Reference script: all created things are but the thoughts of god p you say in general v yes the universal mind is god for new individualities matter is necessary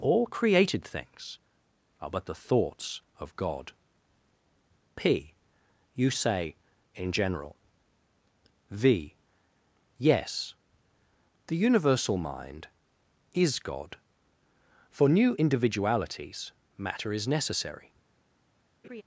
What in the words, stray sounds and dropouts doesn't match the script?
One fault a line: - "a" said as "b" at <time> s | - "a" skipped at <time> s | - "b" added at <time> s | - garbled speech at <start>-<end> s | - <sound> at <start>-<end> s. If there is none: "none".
- laugh at 18.8-19.0 s